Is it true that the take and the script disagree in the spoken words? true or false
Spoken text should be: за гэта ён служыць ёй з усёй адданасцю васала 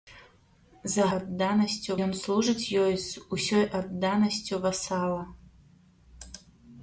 true